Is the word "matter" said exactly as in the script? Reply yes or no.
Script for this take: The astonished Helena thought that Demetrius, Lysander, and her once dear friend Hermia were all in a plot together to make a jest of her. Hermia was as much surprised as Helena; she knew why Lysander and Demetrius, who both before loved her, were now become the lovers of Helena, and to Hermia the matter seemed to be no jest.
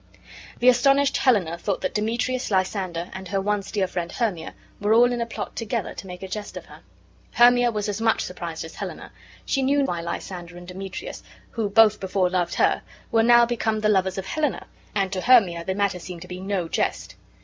yes